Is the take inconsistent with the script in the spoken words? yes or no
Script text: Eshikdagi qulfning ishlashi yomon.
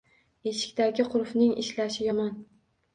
no